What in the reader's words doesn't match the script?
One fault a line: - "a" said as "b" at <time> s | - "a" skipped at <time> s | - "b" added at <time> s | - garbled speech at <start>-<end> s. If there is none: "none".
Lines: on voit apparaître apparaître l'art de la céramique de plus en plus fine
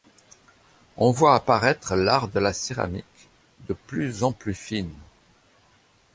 - "apparaître" skipped at 1.9 s